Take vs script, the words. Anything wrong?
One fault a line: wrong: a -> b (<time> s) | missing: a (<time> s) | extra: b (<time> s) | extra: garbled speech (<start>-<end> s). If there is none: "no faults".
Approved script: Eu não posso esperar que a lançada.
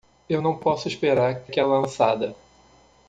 no faults